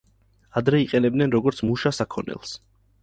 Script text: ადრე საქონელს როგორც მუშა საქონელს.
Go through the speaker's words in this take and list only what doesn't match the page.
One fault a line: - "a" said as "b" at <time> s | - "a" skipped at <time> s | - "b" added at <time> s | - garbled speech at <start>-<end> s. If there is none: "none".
- "საქონელს" said as "იყენებდნენ" at 0.8 s